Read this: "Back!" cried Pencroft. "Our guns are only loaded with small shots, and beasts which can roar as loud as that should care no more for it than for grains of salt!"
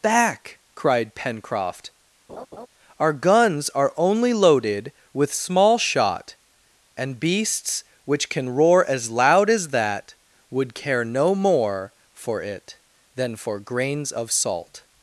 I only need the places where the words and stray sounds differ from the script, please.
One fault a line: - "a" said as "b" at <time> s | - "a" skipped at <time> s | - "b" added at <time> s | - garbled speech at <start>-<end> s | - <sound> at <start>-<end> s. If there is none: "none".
- laugh at 2.3-2.7 s
- "shots" said as "shot" at 5.8 s
- "should" said as "would" at 10.5 s